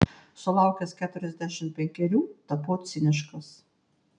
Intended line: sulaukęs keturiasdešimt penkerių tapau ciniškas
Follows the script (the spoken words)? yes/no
yes